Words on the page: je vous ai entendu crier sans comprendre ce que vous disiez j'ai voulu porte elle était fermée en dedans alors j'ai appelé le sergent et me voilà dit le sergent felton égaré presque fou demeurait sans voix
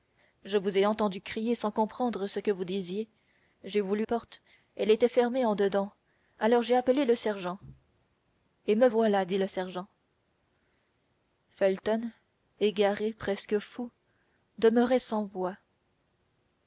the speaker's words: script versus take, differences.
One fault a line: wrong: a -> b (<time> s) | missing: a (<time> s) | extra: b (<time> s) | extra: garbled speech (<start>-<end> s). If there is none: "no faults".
no faults